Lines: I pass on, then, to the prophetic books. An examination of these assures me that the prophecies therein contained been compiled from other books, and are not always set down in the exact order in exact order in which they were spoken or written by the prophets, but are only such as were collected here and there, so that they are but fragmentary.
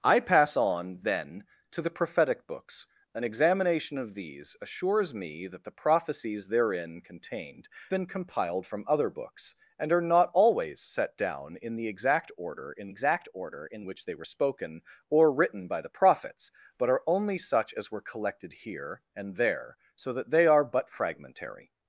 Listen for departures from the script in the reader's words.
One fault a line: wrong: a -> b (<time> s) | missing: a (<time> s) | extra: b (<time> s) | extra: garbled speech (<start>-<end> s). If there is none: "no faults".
no faults